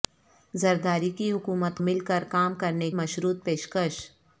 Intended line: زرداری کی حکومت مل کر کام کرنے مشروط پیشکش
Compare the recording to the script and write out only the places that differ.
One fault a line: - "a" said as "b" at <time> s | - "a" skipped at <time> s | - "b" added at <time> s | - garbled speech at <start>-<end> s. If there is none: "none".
none